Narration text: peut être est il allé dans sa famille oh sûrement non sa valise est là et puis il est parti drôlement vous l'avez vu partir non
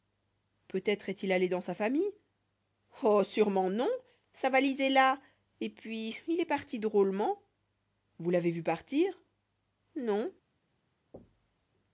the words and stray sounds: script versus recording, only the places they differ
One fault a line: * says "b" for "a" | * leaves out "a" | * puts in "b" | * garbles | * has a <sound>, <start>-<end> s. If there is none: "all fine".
* has a thud, 11.1-11.7 s